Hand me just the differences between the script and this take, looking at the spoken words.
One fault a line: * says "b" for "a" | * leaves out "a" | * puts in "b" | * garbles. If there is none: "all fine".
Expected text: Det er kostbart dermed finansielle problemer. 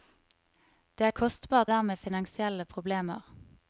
all fine